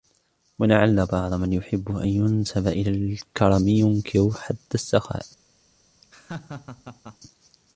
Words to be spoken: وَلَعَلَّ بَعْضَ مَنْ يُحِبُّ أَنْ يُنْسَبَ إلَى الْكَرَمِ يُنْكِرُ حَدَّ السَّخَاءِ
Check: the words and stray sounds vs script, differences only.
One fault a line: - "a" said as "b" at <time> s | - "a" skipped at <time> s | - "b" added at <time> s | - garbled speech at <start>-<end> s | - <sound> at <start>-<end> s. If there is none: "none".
- laugh at 6.0-7.2 s